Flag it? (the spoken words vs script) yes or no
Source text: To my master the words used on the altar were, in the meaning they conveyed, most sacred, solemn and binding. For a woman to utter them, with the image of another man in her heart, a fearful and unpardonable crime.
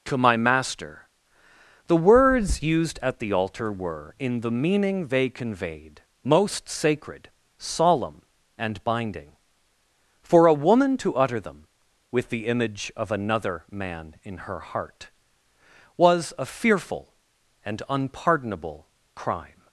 yes